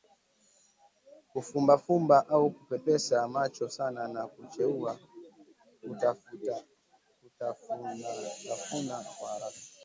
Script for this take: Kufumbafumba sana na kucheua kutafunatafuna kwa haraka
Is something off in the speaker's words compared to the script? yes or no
yes